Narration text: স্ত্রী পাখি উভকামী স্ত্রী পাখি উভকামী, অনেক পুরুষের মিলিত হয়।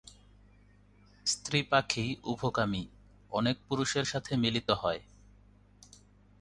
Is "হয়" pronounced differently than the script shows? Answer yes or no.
no